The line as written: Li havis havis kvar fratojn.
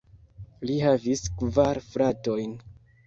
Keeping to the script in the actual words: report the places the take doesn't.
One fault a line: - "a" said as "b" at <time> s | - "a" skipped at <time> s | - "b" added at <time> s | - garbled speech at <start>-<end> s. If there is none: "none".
- "havis" skipped at 1.2 s